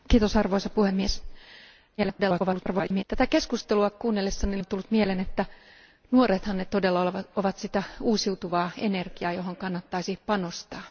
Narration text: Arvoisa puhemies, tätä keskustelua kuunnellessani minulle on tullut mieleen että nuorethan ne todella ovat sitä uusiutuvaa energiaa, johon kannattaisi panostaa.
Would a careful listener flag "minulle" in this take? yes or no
yes